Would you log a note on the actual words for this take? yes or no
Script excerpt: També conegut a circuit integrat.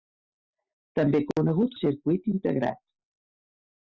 no